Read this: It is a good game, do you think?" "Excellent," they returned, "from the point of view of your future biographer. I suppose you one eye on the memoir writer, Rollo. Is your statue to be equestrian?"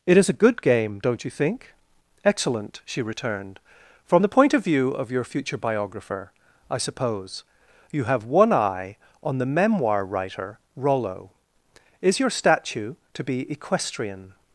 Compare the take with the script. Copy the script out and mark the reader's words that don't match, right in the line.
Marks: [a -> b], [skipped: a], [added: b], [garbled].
It is a good game, [do -> don't] you think?" "Excellent," [they -> she] returned, "from the point of view of your future biographer. I suppose you [added: have] one eye on the memoir writer, Rollo. Is your statue to be equestrian?"